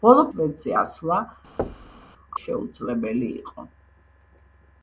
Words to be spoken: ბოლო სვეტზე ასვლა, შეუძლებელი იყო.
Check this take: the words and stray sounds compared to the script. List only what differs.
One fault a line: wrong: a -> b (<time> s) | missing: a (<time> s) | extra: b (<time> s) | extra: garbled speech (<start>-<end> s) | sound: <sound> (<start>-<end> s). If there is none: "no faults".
sound: thud (1.6-2.0 s)